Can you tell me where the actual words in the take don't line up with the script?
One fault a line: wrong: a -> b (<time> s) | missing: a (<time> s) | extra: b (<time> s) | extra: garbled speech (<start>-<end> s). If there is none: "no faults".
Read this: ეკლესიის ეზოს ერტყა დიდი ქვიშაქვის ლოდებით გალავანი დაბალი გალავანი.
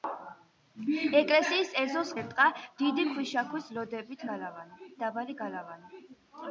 no faults